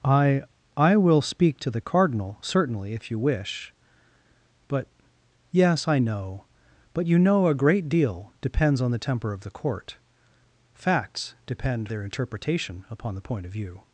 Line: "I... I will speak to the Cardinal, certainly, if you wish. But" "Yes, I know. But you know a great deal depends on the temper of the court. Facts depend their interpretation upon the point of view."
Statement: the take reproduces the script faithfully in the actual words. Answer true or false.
true